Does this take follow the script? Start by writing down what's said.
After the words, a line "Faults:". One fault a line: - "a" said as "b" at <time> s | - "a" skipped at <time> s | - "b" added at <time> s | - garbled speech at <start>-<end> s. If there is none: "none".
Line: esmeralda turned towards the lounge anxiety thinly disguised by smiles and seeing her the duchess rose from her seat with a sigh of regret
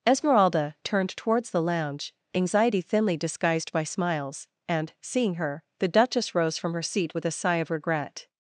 esmeralda turned towards the lounge anxiety thinly disguised by smiles and seeing her the duchess rose from her seat with a sigh of regret
Faults:
none